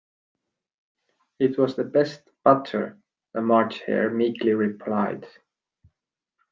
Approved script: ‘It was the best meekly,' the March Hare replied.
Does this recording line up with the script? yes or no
no